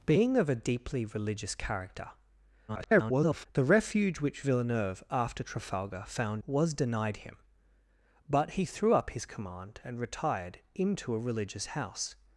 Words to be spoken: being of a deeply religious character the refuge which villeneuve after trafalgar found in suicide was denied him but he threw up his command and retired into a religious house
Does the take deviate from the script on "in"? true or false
true